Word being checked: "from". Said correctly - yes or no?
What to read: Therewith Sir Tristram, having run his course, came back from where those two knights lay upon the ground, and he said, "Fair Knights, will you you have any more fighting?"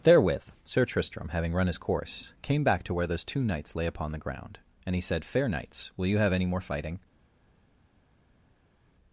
no